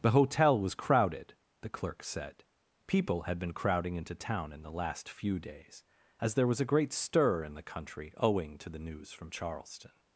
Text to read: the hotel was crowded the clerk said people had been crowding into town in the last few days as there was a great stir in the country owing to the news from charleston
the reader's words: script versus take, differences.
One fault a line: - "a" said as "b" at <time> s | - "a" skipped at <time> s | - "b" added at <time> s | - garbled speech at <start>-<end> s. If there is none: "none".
none